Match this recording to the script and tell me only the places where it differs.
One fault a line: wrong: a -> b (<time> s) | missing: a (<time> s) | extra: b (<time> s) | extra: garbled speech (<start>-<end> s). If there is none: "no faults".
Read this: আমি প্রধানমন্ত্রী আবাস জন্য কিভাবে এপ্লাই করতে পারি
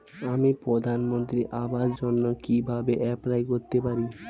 no faults